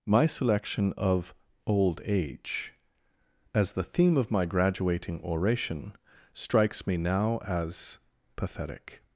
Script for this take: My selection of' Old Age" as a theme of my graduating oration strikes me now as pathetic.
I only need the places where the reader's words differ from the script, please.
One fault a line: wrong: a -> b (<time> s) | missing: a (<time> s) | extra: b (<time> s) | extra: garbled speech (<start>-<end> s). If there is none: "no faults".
wrong: a -> the (3.7 s)